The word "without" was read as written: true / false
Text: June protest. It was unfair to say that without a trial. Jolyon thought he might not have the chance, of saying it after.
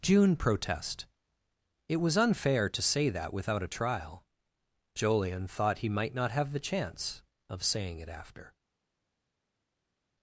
true